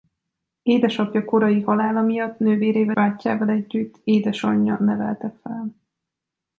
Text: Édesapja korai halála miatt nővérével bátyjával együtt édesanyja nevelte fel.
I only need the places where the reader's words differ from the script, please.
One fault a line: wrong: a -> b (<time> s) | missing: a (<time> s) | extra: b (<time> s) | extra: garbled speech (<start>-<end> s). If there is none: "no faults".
no faults